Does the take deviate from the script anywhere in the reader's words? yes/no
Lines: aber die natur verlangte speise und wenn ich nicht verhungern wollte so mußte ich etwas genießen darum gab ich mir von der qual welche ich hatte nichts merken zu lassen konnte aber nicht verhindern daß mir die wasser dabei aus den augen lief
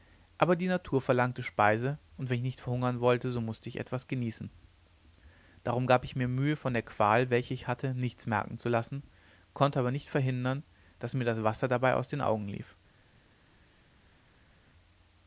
yes